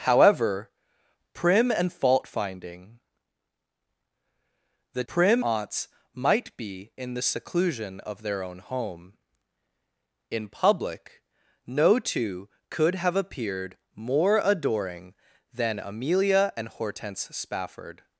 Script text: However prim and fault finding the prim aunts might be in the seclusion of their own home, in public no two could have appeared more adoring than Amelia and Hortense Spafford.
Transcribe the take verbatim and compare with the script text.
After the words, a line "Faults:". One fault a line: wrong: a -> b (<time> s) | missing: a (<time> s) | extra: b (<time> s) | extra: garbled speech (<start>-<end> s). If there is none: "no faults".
However prim and fault finding the prim aunts might be in the seclusion of their own home, in public no two could have appeared more adoring than Amelia and Hortense Spafford.
Faults:
no faults